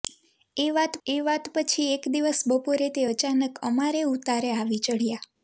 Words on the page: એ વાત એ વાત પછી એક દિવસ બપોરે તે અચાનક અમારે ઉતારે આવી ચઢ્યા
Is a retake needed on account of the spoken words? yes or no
no